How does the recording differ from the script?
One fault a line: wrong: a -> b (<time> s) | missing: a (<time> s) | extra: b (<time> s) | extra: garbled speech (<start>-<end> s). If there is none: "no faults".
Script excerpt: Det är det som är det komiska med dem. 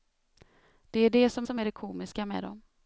extra: som (1.4 s)